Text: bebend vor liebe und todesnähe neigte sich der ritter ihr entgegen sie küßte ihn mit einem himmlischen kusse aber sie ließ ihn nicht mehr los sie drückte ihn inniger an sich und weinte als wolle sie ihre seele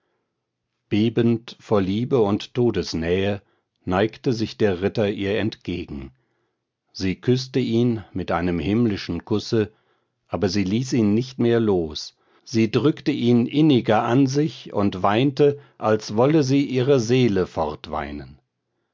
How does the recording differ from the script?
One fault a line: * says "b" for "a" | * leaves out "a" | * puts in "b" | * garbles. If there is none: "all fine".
all fine